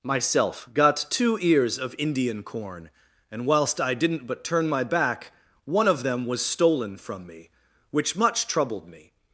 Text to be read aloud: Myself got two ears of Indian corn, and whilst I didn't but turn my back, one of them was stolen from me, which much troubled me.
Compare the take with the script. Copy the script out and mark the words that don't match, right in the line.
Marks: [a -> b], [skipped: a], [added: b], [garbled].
Myself got two ears of Indian corn, and whilst I didn't but turn my back, one of them was stolen from me, which much troubled me.